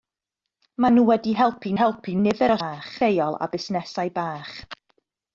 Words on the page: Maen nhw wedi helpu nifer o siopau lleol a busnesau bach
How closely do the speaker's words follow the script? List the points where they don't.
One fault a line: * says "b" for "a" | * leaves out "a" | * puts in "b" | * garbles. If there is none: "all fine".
* puts in "helpu"
* says "bach" for "siopau"